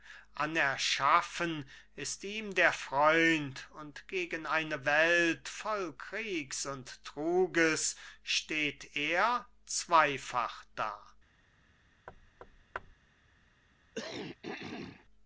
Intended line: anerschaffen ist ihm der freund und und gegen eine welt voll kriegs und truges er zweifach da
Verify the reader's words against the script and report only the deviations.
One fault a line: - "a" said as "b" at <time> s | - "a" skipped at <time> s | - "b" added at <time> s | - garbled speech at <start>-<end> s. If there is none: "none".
- "und" skipped at 4.1 s
- "steht" added at 8.2 s